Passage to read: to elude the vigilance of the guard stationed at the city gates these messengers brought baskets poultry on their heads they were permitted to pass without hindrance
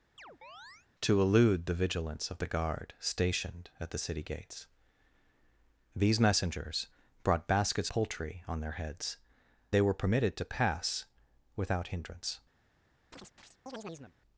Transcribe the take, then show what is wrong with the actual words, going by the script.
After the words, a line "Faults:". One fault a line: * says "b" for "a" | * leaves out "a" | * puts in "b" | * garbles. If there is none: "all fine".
to elude the vigilance of the guard stationed at the city gates these messengers brought baskets poultry on their heads they were permitted to pass without hindrance
Faults:
all fine